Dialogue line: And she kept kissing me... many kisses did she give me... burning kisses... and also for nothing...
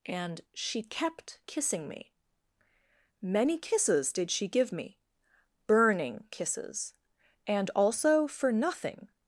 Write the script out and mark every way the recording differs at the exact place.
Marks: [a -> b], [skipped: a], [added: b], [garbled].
And she kept kissing me... many kisses did she give me... burning kisses... and also for nothing...